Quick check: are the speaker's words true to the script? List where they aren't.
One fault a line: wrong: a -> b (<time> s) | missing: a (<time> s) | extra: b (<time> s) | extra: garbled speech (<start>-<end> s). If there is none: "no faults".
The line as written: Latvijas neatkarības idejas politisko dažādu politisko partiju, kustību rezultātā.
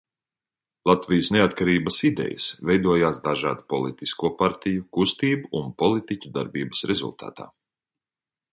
wrong: politisko -> veidojās (2.7 s)
extra: un politiķu darbības (5.6 s)